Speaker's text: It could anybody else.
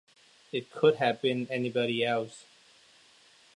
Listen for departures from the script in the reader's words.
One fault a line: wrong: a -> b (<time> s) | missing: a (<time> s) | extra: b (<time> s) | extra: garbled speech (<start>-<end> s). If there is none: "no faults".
extra: have been (0.9 s)